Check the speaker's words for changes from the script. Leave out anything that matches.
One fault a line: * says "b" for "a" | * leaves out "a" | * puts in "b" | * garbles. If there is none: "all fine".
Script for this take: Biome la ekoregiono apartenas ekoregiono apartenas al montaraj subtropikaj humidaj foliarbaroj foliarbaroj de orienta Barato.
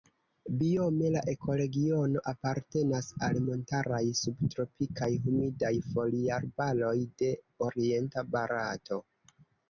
* leaves out "ekoregiono apartenas"
* leaves out "foliarbaroj"